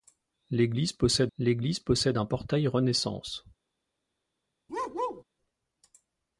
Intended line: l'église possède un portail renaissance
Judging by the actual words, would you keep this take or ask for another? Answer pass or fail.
fail